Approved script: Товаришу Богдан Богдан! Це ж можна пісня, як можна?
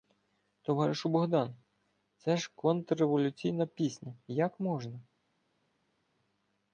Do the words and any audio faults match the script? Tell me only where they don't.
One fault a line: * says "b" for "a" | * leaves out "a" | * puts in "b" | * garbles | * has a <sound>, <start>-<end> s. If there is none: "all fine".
* leaves out "Богдан"
* says "контрреволюційна" for "можна"